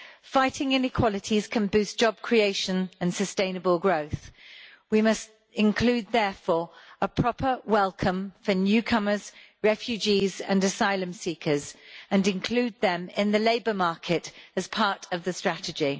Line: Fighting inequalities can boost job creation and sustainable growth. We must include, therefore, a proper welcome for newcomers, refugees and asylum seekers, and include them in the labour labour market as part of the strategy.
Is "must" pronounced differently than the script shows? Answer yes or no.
no